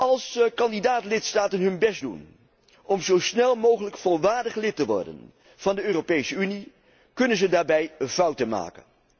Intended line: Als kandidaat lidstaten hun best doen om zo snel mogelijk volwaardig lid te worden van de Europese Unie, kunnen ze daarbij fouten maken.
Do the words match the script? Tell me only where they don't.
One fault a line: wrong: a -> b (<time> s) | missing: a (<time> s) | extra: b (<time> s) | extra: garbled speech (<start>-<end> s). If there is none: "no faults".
no faults